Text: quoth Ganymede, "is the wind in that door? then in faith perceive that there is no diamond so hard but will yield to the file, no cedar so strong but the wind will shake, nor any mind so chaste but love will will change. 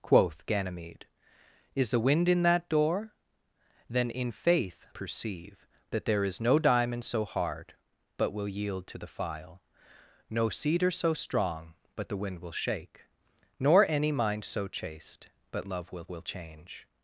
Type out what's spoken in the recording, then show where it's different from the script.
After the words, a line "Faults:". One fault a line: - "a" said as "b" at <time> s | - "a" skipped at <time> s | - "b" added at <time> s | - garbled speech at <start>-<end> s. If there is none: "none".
quoth Ganymede, "is the wind in that door? then in faith perceive that there is no diamond so hard but will yield to the file, no cedar so strong but the wind will shake, nor any mind so chaste but love will will change.
Faults:
none